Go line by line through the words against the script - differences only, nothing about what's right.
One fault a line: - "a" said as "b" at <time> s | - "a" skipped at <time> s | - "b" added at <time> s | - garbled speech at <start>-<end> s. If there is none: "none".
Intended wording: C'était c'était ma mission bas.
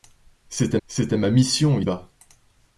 none